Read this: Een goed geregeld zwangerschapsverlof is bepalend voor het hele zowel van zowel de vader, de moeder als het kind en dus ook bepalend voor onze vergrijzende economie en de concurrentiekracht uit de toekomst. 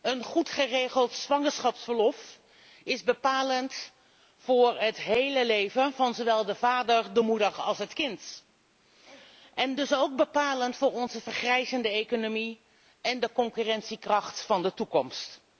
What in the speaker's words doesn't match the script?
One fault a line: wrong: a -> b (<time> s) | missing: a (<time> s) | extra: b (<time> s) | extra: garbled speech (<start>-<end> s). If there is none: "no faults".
wrong: zowel -> leven (5.5 s)
wrong: uit -> van (14.4 s)